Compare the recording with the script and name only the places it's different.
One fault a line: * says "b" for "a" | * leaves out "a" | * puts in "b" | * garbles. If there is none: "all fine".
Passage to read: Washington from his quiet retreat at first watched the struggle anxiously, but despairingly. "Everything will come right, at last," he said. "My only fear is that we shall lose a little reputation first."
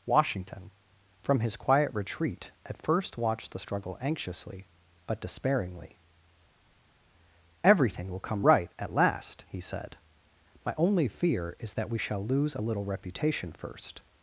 all fine